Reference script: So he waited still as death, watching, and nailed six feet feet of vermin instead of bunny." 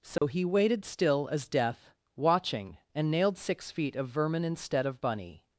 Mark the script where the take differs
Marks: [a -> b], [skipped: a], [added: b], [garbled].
So he waited still as death, watching, and nailed six feet [skipped: feet] of vermin instead of bunny."